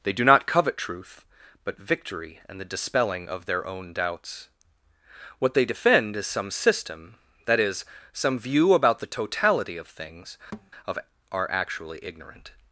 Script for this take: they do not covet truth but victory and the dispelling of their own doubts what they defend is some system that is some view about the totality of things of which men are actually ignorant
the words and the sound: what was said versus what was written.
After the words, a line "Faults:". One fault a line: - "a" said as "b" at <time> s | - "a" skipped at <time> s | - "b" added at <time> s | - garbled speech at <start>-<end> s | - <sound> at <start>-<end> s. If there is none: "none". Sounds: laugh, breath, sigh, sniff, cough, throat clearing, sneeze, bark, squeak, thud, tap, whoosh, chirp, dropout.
they do not covet truth but victory and the dispelling of their own doubts what they defend is some system that is some view about the totality of things of are actually ignorant
Faults:
- thud at 10.5-10.7 s
- "which men" skipped at 11.0 s